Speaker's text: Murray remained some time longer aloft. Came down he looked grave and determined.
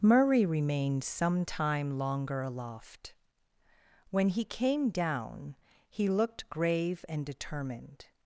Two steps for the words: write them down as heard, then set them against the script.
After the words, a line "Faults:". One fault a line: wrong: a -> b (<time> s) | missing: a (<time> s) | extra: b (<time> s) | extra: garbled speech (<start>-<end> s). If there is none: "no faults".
Murray remained some time longer aloft. When he came down he looked grave and determined.
Faults:
extra: When he (4.1 s)